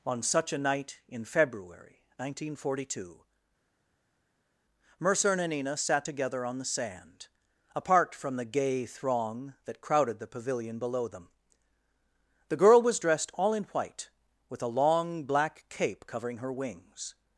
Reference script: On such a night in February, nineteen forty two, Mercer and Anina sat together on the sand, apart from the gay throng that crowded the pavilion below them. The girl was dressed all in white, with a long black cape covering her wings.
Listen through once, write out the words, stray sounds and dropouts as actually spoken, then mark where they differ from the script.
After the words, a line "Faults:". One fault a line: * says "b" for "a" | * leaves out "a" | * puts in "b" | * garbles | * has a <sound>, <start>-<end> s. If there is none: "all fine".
On such a night in February, nineteen forty two, Mercer and Anina sat together on the sand, apart from the gay throng that crowded the pavilion below them. The girl was dressed all in white, with a long black cape covering her wings.
Faults:
all fine